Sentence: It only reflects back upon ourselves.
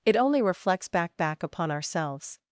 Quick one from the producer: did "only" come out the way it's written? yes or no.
yes